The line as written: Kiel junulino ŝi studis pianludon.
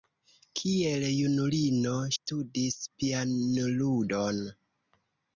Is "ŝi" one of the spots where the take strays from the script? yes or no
yes